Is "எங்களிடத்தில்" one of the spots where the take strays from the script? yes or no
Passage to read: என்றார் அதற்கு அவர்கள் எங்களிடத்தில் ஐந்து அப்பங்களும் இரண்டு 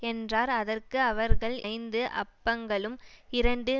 yes